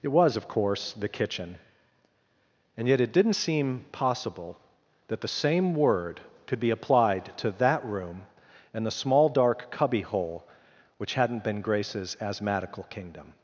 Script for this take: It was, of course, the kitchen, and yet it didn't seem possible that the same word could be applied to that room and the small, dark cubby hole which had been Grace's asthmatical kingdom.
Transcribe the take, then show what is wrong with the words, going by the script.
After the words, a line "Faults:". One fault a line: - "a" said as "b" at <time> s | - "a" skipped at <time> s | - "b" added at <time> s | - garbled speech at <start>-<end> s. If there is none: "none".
It was, of course, the kitchen, and yet it didn't seem possible that the same word could be applied to that room and the small, dark cubby hole which hadn't been Grace's asthmatical kingdom.
Faults:
- "had" said as "hadn't" at 11.1 s